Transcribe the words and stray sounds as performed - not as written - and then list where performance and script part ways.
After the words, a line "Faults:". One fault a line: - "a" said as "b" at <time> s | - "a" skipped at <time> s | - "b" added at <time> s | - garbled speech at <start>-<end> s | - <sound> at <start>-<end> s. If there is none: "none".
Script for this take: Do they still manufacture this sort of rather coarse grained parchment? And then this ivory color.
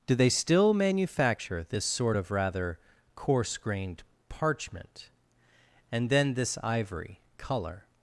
Do they still manufacture this sort of rather coarse grained parchment? And then this ivory color.
Faults:
none